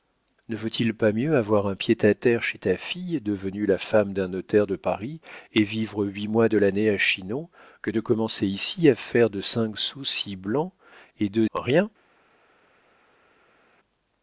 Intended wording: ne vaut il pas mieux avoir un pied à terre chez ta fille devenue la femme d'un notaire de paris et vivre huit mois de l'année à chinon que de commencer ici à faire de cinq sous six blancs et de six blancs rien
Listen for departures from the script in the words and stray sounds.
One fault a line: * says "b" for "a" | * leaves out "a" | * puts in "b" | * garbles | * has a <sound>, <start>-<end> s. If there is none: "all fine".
* leaves out "six blancs"